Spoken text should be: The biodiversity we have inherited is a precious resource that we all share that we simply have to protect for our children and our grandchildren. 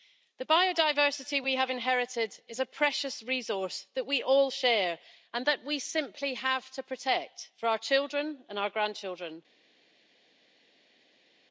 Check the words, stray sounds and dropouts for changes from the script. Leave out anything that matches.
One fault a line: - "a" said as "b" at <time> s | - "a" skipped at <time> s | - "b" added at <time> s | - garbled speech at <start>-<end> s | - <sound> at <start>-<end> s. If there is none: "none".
- "and" added at 5.3 s